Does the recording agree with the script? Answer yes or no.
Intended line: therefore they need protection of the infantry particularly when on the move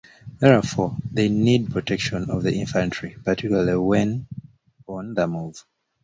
yes